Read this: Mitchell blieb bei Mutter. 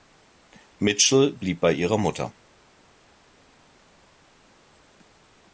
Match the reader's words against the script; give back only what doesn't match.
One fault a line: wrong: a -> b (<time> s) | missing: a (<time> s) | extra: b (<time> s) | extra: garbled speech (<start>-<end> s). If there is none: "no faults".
extra: ihrer (1.7 s)